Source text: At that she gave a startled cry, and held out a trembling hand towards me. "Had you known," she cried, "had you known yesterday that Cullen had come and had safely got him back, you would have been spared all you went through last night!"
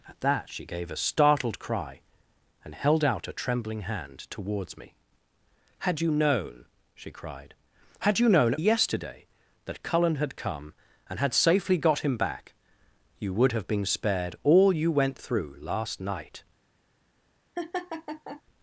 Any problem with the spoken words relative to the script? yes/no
no